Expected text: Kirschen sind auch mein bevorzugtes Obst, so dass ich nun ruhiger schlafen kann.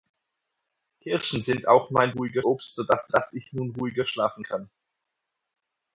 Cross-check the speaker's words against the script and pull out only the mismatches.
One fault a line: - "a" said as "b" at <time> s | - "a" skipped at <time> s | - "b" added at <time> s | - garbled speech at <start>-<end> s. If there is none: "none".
- "bevorzugtes" said as "ruhiger" at 2.1 s
- "dass" added at 3.1 s